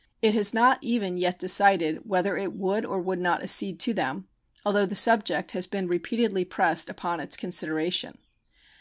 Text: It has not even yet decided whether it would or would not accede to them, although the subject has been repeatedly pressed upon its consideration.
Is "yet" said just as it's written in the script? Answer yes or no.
yes